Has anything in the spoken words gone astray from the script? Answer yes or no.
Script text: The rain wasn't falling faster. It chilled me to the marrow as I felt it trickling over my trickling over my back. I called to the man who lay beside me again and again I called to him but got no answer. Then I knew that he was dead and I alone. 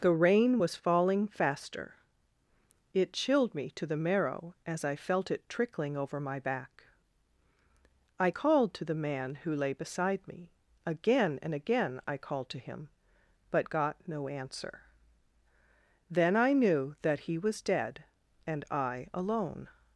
yes